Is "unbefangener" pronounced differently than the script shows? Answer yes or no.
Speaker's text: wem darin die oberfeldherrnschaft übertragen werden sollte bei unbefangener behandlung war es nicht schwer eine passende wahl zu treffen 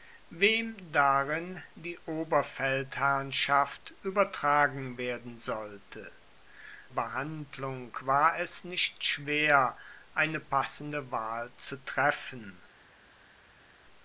yes